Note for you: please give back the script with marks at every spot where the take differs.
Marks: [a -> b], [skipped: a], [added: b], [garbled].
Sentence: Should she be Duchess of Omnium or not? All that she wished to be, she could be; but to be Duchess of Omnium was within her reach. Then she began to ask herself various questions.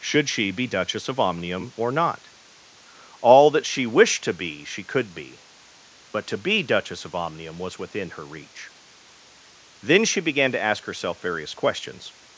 Should she be Duchess of Omnium or not? All that she wished to be, she could be; but to be Duchess of Omnium was within her reach. Then she began to ask herself various questions.